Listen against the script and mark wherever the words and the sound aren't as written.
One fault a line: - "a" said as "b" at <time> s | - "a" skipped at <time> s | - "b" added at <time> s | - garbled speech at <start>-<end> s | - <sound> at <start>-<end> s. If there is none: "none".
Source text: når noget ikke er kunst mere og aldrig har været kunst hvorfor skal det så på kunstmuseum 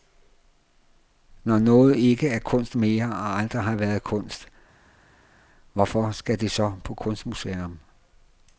none